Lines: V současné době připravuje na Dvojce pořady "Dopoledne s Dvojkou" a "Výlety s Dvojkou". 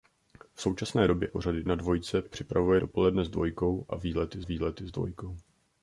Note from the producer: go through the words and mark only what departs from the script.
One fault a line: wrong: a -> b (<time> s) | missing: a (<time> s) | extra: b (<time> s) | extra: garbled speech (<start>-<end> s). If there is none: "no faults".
wrong: připravuje -> pořady (1.3 s)
wrong: pořady -> připravuje (2.2 s)
extra: výlety (4.4 s)